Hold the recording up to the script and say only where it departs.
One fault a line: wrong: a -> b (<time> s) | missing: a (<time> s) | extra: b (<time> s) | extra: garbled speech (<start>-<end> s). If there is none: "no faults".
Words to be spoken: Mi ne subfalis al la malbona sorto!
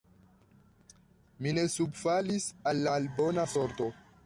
missing: la (2.9 s)